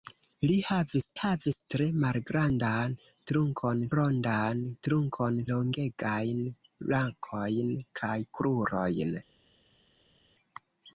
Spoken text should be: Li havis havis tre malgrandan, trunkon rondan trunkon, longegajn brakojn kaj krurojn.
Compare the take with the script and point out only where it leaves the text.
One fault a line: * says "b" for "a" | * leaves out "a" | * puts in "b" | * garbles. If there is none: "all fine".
all fine